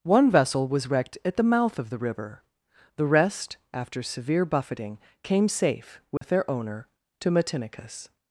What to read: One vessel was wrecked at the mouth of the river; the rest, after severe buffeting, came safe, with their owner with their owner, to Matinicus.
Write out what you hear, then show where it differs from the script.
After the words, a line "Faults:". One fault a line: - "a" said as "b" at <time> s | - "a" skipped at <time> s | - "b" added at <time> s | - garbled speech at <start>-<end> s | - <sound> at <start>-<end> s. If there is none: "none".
One vessel was wrecked at the mouth of the river; the rest, after severe buffeting, came safe, with their owner, to Matinicus.
Faults:
- dropout at 6.2-6.2 s
- "with their owner" skipped at 6.9 s